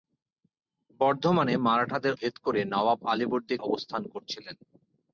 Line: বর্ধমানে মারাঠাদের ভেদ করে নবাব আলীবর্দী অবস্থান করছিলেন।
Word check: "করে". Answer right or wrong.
right